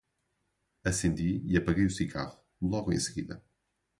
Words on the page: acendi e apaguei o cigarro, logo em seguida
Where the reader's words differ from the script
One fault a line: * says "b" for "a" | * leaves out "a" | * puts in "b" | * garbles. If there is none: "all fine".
all fine